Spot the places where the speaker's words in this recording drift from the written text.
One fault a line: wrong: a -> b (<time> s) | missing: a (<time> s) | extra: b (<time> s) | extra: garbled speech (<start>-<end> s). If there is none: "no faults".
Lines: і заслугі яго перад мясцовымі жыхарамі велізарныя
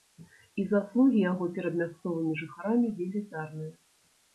no faults